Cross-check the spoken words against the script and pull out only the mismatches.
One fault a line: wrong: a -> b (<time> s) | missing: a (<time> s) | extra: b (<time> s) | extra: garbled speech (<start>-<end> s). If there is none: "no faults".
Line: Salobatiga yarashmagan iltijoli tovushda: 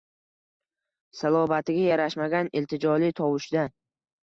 no faults